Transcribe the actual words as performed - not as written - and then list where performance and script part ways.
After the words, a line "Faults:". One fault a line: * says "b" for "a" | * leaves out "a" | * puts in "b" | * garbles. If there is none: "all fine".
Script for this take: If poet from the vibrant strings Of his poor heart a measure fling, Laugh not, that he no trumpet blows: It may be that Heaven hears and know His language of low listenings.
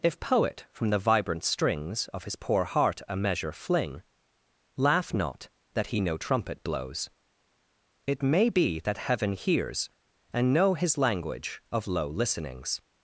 If poet from the vibrant strings Of his poor heart a measure fling, Laugh not, that he no trumpet blows: It may be that Heaven hears and know His language of low listenings.
Faults:
all fine